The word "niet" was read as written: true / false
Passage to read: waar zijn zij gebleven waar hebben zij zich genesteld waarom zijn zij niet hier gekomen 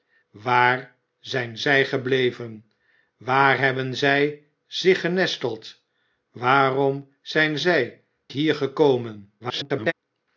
false